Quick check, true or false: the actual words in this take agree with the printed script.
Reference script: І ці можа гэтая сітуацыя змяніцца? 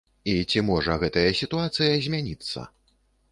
true